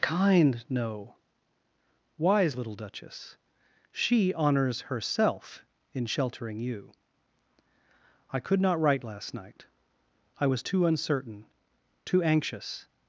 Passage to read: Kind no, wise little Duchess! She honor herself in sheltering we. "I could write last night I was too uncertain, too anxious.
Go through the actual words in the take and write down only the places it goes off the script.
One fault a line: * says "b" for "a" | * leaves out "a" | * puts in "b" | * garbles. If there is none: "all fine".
* says "honors" for "honor"
* says "you" for "we"
* puts in "not"